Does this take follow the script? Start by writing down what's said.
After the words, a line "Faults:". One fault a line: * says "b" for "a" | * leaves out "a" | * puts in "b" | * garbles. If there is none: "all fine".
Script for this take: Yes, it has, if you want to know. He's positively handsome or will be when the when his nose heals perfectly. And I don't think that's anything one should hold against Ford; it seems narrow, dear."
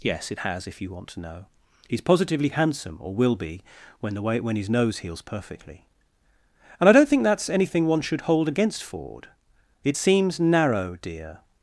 Yes, it has, if you want to know. He's positively handsome or will be when the way when his nose heals perfectly. And I don't think that's anything one should hold against Ford; it seems narrow, dear."
Faults:
* puts in "way"